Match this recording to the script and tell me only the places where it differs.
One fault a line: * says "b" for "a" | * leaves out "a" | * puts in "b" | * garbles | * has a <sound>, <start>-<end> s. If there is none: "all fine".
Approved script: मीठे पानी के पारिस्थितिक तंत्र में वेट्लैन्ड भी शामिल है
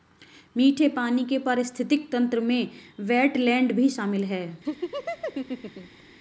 * has a laugh, 4.6-6.0 s